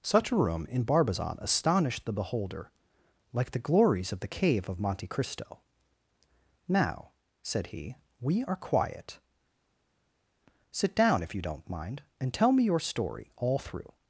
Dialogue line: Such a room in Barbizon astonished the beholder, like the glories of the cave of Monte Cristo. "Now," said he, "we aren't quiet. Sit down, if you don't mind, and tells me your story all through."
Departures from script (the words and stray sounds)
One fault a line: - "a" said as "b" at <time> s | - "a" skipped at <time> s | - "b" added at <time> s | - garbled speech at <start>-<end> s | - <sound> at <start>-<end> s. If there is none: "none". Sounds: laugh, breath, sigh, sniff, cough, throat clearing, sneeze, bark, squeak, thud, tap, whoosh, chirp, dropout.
- "aren't" said as "are" at 8.4 s
- "tells" said as "tell" at 12.3 s